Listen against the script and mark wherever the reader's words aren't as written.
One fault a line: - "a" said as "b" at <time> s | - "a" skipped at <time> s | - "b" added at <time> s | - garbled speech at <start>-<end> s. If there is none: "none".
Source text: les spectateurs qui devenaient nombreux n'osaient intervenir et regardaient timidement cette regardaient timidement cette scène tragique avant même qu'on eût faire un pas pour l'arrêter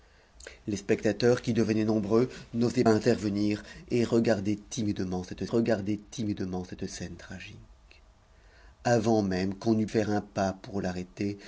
none